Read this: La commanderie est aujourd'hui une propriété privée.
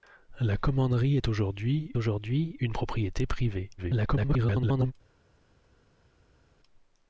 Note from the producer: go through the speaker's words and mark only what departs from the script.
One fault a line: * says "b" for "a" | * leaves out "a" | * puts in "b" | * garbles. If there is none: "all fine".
* puts in "aujourd'hui"
* garbles